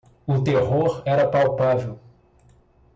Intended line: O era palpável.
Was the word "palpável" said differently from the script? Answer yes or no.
no